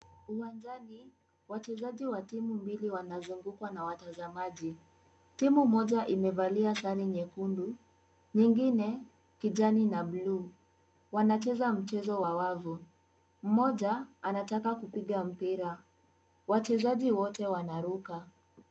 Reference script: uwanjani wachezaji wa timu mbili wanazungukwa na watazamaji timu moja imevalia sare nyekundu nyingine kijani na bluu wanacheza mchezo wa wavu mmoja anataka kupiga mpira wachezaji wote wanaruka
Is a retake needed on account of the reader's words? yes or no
no